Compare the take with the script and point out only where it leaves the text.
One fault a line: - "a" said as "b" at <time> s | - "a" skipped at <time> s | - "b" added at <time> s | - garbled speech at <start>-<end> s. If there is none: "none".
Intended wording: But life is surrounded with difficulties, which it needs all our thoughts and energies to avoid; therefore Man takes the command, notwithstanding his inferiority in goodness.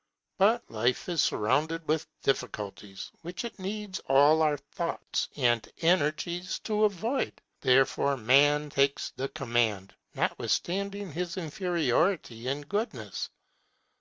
none